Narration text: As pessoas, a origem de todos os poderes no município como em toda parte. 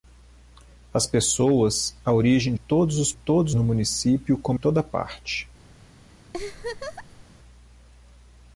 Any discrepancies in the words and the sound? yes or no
yes